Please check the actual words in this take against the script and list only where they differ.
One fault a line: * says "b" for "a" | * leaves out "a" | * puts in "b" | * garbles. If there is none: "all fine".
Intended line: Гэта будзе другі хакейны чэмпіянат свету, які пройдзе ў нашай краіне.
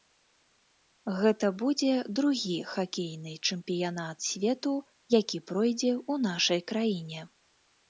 all fine